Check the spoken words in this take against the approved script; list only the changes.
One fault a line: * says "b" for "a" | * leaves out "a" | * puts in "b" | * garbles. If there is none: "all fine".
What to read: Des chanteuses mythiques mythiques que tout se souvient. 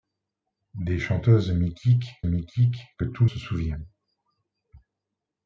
all fine